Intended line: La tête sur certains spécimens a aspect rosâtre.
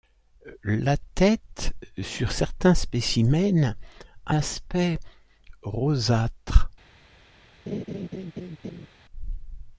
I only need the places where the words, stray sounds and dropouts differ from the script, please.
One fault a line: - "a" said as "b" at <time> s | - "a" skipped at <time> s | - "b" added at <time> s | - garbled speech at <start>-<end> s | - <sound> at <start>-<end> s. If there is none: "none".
- laugh at 7.7-8.9 s